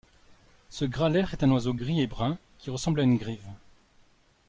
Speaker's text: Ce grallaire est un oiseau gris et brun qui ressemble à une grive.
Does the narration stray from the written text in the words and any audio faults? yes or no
no